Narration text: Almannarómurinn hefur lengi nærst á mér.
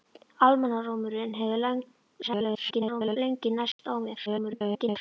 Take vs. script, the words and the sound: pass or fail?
fail